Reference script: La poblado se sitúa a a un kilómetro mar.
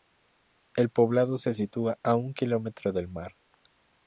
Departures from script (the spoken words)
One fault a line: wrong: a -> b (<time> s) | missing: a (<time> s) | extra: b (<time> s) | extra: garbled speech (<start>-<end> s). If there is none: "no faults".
wrong: La -> El (0.8 s)
missing: a (2.1 s)
extra: del (2.9 s)